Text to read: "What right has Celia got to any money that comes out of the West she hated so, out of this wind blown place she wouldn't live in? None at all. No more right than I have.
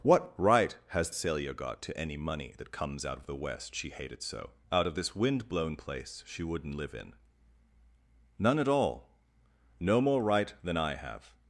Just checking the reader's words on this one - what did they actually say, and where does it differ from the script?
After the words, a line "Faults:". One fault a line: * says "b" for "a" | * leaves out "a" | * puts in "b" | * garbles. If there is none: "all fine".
"What right has Celia got to any money that comes out of the West she hated so, out of this wind blown place she wouldn't live in? None at all. No more right than I have.
Faults:
all fine